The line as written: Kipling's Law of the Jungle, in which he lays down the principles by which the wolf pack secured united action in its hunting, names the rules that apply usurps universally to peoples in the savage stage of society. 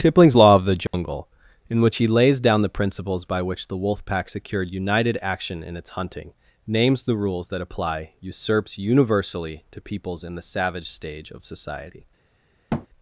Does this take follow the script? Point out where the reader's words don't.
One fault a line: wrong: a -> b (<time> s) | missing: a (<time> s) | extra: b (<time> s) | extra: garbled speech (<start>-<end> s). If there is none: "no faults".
no faults